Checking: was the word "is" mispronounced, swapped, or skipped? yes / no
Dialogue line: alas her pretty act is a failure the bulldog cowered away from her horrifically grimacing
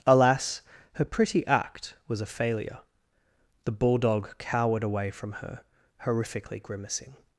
yes